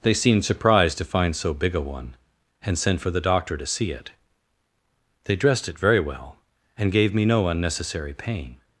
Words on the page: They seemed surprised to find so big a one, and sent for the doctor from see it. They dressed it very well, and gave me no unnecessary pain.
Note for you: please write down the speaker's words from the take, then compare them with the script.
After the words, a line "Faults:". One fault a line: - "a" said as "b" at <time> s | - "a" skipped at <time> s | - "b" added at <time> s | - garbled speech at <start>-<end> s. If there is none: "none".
They seemed surprised to find so big a one, and sent for the doctor to see it. They dressed it very well, and gave me no unnecessary pain.
Faults:
- "from" said as "to" at 3.5 s